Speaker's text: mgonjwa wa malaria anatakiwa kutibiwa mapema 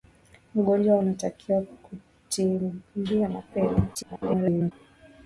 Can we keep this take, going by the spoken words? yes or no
no